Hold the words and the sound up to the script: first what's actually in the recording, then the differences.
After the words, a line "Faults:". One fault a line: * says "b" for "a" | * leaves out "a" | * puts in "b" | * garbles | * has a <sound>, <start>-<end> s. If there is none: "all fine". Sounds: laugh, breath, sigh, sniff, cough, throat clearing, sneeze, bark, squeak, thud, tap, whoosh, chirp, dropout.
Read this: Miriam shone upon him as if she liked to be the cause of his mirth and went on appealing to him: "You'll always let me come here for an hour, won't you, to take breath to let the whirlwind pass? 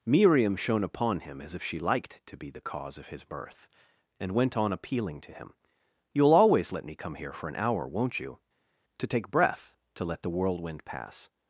Miriam shone upon him as if she liked to be the cause of his birth and went on appealing to him: "You'll always let me come here for an hour, won't you, to take breath to let the whirlwind pass?
Faults:
* says "birth" for "mirth"